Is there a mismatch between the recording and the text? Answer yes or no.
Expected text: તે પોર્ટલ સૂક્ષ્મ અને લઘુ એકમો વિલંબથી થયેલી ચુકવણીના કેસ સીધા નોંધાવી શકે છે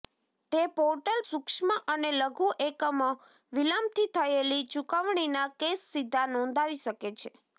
no